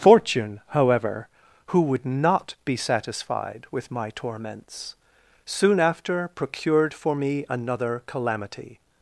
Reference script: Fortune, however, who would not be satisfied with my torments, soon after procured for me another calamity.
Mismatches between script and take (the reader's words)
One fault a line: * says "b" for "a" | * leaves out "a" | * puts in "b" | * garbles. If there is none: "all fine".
all fine